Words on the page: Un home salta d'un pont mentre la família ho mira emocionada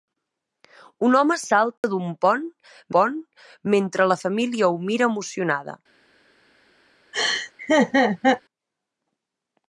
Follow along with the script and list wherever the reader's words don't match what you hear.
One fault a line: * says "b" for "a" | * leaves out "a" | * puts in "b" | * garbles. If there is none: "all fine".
* puts in "pont"